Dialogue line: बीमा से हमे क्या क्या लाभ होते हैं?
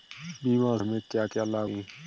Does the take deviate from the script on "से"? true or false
true